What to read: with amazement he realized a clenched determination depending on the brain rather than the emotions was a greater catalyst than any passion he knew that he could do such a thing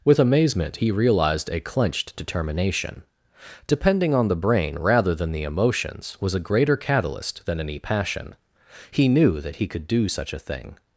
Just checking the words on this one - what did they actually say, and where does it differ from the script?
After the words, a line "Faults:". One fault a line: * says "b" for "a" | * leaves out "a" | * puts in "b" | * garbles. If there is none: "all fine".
with amazement he realized a clenched determination depending on the brain rather than the emotions was a greater catalyst than any passion he knew that he could do such a thing
Faults:
all fine